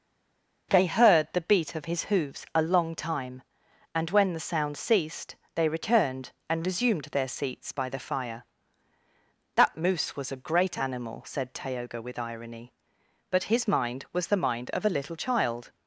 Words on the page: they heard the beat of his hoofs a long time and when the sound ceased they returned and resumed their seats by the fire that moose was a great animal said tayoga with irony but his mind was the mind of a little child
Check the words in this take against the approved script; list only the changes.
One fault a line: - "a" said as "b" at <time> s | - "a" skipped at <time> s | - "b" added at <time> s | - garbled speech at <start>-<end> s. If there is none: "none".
none